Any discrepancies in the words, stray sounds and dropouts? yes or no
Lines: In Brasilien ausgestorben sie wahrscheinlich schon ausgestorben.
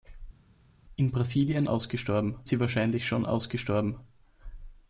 no